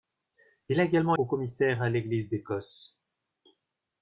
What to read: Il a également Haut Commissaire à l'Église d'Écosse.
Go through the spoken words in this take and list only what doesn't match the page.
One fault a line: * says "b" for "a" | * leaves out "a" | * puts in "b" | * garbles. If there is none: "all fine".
all fine